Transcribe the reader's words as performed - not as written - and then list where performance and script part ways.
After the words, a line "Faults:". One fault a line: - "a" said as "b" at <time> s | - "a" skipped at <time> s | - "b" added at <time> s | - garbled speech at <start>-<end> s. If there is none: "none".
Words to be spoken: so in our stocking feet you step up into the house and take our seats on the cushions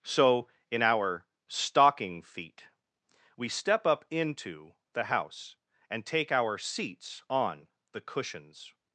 so in our stocking feet we step up into the house and take our seats on the cushions
Faults:
- "you" said as "we" at 3.4 s